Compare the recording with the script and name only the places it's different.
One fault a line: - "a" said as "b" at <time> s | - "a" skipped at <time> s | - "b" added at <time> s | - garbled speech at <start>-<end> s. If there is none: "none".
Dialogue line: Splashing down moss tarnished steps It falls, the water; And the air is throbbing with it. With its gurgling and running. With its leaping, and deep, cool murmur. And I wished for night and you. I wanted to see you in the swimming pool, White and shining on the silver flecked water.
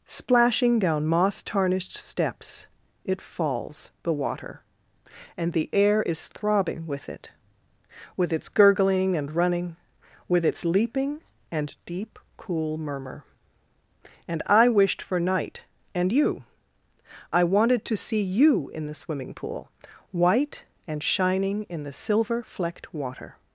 - "on" said as "in" at 21.6 s